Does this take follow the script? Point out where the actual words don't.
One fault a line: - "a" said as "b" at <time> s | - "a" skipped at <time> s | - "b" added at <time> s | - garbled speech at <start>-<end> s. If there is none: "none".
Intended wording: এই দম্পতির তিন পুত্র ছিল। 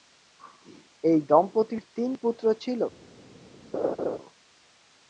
none